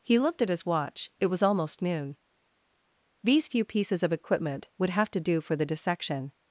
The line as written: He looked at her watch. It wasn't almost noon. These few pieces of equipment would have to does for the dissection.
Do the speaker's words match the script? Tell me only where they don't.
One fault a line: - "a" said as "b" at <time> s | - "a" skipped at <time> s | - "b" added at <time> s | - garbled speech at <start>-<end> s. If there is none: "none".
- "her" said as "his" at 0.5 s
- "wasn't" said as "was" at 1.3 s
- "does" said as "do" at 5.2 s